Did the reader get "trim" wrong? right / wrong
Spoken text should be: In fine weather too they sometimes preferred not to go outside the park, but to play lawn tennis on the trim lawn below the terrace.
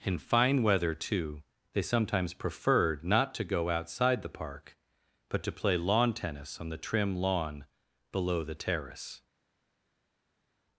right